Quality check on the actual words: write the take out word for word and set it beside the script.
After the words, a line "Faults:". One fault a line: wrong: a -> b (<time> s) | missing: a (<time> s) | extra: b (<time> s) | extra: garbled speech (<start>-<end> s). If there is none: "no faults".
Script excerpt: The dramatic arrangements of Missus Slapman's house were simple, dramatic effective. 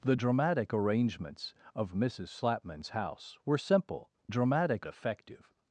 The dramatic arrangements of Missus Slapman's house were simple, dramatic effective.
Faults:
no faults